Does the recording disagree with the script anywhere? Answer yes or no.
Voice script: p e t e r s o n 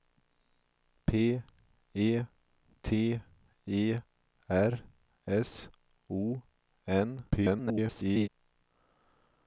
yes